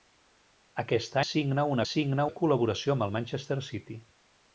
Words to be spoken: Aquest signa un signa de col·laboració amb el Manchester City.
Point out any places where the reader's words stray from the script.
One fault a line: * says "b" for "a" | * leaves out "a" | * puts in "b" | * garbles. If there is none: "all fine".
all fine